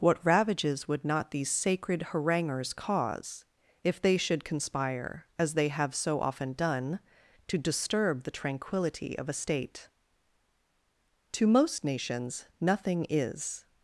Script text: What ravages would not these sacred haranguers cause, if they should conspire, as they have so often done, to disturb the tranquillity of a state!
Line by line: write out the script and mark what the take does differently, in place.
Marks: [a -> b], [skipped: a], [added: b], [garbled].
What ravages would not these sacred haranguers cause, if they should conspire, as they have so often done, to disturb the tranquillity of a state! [added: To most nations nothing is]